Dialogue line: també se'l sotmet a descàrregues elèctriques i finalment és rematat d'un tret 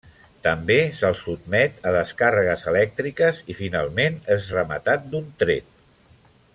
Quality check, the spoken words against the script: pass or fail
pass